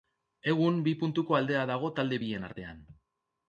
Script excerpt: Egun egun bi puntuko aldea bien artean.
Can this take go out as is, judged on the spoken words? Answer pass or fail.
fail